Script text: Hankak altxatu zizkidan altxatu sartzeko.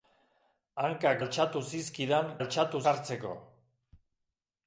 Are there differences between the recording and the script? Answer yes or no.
no